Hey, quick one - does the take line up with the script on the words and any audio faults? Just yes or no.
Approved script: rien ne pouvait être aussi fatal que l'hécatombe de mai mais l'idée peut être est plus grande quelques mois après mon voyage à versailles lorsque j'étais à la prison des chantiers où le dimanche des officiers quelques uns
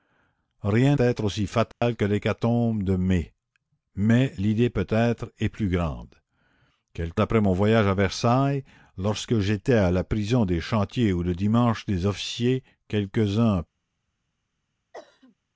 no